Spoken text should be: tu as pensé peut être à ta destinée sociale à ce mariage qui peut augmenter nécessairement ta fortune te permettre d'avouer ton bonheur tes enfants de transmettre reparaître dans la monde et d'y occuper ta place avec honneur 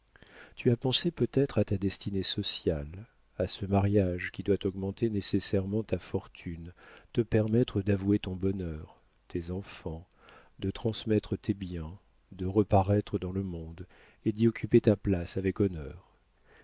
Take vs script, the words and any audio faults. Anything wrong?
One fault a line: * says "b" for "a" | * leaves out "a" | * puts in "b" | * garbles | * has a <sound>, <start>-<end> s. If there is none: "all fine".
* says "doit" for "peut"
* puts in "tes biens de"
* says "le" for "la"